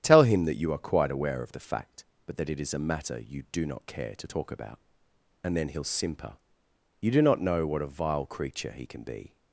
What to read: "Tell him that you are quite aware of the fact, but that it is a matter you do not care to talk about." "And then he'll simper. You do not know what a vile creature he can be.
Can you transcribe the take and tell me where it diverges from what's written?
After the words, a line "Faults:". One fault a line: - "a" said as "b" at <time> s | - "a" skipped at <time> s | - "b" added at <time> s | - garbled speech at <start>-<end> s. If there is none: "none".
"Tell him that you are quite aware of the fact, but that it is a matter you do not care to talk about." "And then he'll simper. You do not know what a vile creature he can be.
Faults:
none